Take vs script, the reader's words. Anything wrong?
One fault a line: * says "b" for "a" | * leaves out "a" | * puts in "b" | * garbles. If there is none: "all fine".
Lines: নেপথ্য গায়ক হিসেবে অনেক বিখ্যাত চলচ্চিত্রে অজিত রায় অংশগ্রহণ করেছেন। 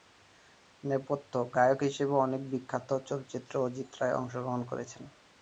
all fine